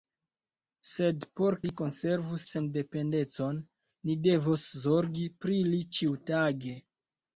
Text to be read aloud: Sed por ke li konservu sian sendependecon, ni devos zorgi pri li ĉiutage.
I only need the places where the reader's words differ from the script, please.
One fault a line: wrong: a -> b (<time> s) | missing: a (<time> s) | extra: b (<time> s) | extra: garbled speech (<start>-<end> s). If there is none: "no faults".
missing: ke (1.6 s)
missing: sian (2.4 s)